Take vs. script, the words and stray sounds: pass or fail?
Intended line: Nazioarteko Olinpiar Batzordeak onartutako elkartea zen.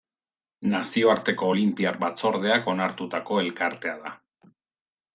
fail